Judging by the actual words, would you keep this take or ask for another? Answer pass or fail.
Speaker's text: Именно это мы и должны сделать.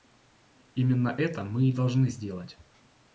pass